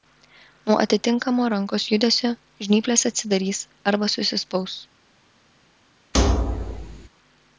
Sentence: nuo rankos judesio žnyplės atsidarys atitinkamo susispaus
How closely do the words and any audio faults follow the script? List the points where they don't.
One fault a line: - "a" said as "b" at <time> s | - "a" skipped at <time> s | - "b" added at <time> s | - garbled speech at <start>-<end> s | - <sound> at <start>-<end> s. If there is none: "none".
- "atitinkamo" added at 0.8 s
- "atitinkamo" said as "arba" at 3.9 s
- thud at 6.1-7.1 s